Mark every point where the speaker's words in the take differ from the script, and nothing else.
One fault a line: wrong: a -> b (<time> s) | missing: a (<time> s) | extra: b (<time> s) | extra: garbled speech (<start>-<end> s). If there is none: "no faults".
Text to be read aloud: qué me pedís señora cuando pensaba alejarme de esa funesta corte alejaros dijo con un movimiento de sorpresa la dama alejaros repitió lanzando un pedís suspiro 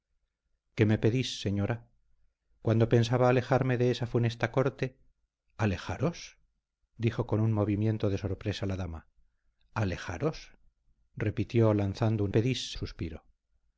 no faults